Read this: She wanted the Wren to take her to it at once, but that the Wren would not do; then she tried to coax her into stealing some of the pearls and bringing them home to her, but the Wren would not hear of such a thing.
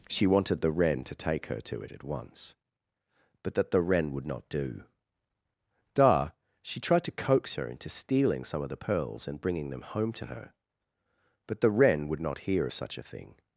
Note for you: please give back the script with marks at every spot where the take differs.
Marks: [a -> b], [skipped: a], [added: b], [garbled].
She wanted the Wren to take her to it at once, but that the Wren would not do; [then -> da] she tried to coax her into stealing some of the pearls and bringing them home to her, but the Wren would not hear of such a thing.